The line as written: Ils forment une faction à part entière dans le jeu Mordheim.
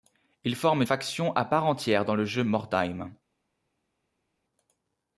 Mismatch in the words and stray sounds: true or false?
true